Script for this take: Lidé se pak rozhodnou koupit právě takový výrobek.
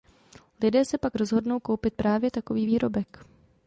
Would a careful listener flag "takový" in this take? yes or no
no